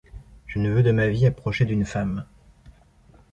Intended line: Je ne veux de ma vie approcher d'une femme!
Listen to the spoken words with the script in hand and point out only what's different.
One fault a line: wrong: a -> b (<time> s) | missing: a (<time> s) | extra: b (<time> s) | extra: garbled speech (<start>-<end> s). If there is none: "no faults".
no faults